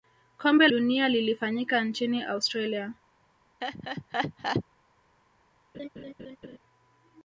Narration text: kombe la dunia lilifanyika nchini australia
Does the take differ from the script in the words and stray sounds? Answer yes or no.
yes